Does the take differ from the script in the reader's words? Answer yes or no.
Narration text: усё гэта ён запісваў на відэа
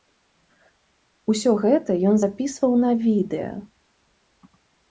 no